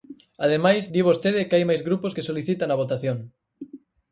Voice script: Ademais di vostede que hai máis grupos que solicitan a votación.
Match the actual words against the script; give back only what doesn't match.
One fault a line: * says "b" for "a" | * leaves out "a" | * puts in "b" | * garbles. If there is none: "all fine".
all fine